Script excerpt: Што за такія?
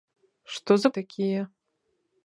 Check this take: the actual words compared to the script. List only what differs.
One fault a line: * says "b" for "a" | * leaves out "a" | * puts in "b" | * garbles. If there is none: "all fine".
all fine